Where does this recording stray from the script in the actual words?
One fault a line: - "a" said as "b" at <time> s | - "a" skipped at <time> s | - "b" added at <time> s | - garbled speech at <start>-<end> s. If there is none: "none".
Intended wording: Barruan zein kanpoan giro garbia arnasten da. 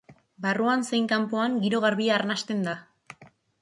none